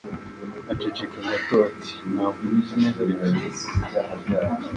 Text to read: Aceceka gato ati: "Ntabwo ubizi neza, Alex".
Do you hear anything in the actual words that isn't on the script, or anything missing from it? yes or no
no